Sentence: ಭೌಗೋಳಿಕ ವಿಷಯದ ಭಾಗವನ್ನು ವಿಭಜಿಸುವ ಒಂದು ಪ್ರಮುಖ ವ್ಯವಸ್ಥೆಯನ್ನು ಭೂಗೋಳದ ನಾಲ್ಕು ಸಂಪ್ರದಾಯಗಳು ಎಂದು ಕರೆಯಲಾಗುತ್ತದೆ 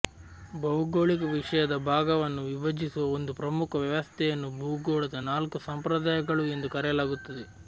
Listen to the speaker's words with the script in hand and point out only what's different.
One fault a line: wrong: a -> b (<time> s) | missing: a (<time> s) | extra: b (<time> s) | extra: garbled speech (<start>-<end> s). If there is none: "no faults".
no faults